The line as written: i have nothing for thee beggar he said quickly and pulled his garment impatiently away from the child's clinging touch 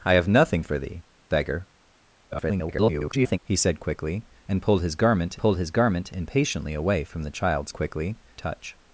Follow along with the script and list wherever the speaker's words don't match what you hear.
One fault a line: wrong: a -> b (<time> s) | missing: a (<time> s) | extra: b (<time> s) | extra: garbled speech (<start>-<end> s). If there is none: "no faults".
extra: garbled speech (2.3-3.4 s)
extra: pulled his garment (5.4 s)
wrong: clinging -> quickly (7.7 s)